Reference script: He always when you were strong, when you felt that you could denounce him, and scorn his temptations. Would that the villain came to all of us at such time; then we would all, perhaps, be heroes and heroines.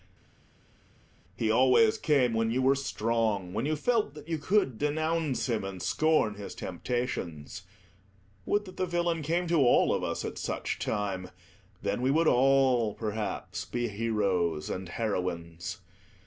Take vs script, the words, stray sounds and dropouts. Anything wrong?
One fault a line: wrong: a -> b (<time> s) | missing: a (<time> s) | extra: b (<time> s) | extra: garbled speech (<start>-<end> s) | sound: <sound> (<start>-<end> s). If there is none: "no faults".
extra: came (2.0 s)